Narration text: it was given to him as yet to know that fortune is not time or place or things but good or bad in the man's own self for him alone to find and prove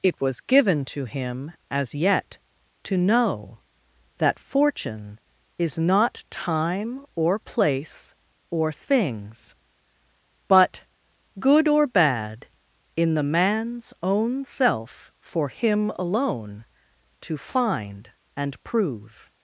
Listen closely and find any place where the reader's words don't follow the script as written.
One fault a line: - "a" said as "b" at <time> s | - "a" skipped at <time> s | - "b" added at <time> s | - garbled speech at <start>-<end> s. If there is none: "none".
none